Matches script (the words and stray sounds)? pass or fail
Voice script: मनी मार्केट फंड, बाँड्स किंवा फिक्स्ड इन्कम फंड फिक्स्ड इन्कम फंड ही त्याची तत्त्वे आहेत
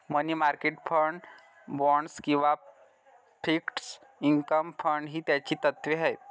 fail